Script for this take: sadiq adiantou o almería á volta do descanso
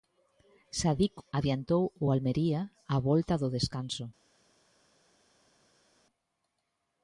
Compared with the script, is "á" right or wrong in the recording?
right